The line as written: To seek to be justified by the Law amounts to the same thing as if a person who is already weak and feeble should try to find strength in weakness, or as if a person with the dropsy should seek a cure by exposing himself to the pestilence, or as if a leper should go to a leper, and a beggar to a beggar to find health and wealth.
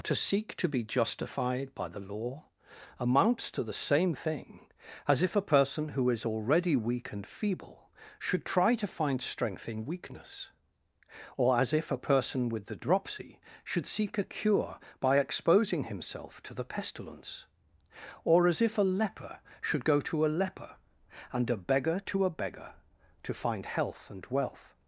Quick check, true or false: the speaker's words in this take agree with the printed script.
true